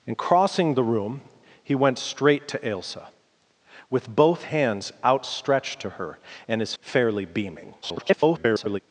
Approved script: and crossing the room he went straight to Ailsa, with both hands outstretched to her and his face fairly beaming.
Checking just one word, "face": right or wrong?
wrong